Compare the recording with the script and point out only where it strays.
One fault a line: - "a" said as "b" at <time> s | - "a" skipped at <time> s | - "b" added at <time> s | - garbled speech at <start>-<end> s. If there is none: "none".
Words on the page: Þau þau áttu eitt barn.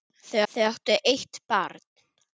none